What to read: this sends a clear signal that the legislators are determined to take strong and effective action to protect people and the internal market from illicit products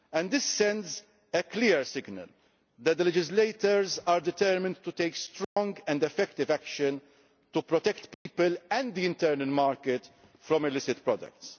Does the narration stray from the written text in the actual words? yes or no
no